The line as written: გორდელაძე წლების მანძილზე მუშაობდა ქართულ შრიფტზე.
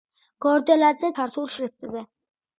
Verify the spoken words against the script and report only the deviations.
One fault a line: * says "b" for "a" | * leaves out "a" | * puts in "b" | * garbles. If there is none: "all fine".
* leaves out "წლების მანძილზე მუშაობდა"